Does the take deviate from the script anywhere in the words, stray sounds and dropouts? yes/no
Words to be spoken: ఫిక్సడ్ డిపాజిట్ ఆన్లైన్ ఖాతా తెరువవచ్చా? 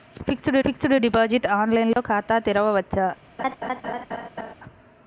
yes